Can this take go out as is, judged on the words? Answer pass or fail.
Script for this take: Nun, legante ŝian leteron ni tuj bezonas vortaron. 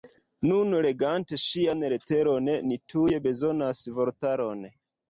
pass